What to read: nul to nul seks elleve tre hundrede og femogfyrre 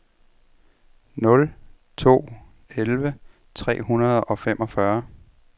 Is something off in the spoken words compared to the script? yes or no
yes